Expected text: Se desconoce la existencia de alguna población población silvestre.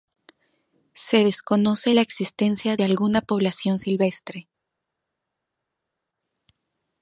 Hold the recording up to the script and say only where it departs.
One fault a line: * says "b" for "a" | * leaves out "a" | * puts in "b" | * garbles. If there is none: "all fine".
* leaves out "población"